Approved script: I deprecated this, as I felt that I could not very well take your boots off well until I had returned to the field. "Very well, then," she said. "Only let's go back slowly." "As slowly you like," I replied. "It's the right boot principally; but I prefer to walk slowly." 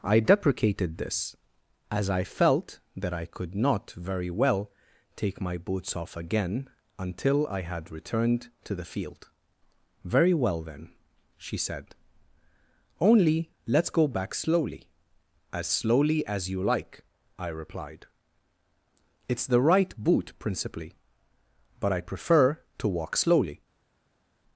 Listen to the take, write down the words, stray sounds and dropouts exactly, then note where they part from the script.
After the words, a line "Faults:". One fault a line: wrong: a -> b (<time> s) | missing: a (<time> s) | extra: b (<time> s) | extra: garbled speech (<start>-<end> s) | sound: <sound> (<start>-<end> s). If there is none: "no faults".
I deprecated this, as I felt that I could not very well take my boots off again until I had returned to the field. "Very well, then," she said. "Only let's go back slowly." "As slowly as you like," I replied. "It's the right boot principally; but I prefer to walk slowly."
Faults:
wrong: your -> my (5.4 s)
wrong: well -> again (6.2 s)
extra: as (16.3 s)